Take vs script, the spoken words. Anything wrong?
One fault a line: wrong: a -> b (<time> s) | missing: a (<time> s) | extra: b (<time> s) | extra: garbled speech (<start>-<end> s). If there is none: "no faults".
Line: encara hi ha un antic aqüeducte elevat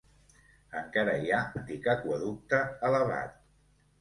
missing: un (1.4 s)